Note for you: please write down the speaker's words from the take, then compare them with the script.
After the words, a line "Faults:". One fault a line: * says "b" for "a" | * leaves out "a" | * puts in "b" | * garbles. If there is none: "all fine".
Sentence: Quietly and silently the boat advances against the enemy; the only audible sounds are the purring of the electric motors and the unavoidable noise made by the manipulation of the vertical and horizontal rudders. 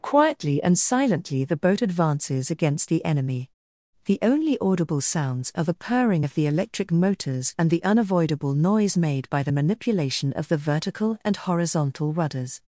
Quietly and silently the boat advances against the enemy; the only audible sounds are the purring of the electric motors and the unavoidable noise made by the manipulation of the vertical and horizontal rudders.
Faults:
all fine